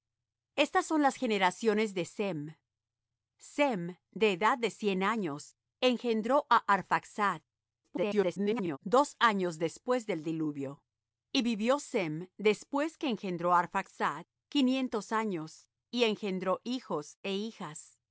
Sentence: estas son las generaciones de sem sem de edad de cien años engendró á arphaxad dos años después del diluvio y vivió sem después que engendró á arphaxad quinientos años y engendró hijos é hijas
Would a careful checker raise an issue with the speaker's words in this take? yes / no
yes